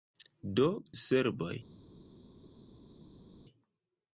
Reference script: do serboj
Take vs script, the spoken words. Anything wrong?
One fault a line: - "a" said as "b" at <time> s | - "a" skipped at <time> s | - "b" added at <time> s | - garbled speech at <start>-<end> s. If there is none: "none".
none